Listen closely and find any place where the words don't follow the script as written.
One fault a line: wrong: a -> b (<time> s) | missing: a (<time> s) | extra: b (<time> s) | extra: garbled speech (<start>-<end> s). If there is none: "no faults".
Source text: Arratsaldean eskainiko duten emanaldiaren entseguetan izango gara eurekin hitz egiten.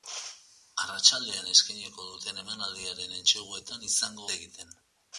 missing: gara eurekin hitz (4.3 s)